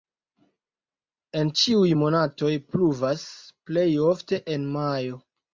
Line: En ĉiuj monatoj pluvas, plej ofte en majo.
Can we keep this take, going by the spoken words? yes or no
yes